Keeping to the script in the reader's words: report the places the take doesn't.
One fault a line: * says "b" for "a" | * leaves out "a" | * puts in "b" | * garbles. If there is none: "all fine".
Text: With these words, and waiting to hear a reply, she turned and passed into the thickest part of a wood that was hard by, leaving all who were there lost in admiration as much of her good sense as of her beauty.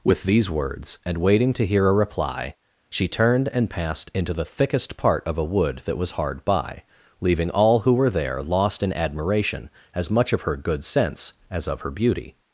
all fine